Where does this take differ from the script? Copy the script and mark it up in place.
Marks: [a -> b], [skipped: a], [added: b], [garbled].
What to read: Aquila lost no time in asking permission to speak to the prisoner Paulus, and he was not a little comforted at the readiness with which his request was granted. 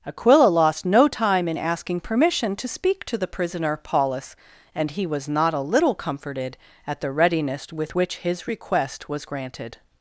Aquila lost no time in asking permission to speak to the prisoner Paulus, and he was not a little comforted at the readiness with which his request was granted.